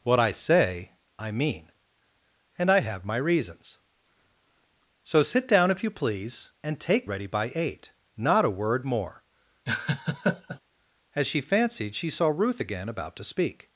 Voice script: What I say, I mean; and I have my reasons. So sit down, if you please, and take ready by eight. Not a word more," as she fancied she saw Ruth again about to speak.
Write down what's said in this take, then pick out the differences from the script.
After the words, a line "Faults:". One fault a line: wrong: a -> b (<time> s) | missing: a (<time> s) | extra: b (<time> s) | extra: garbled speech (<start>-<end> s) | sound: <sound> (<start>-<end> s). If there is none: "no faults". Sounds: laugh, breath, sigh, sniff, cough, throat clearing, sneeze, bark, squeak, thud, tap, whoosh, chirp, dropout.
What I say, I mean; and I have my reasons. So sit down, if you please, and take ready by eight. Not a word more," as she fancied she saw Ruth again about to speak.
Faults:
sound: laugh (9.7-10.6 s)